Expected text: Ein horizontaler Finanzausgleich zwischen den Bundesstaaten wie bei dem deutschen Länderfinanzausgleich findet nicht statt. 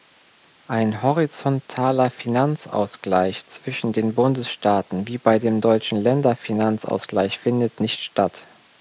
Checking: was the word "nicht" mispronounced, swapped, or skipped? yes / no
no